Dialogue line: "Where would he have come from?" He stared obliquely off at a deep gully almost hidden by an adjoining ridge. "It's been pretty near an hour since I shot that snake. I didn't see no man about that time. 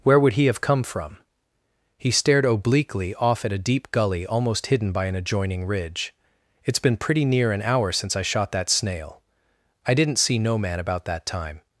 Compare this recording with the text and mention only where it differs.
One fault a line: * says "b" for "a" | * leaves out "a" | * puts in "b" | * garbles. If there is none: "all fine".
* says "snail" for "snake"